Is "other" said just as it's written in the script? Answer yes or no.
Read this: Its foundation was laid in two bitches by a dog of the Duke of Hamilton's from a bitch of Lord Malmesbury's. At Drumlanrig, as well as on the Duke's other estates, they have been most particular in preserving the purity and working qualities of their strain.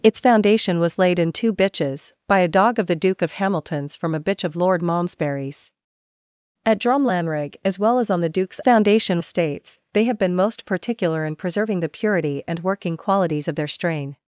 no